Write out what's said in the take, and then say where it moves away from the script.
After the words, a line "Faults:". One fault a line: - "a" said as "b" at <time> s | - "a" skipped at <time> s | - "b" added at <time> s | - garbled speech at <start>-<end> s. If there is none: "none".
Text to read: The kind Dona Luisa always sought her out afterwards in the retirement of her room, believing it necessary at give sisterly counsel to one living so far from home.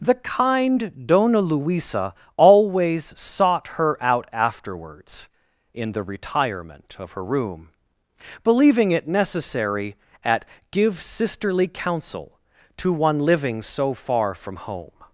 The kind Dona Luisa always sought her out afterwards in the retirement of her room, believing it necessary at give sisterly counsel to one living so far from home.
Faults:
none